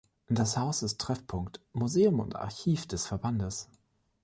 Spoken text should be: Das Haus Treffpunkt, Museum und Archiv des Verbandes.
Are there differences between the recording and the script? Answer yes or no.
yes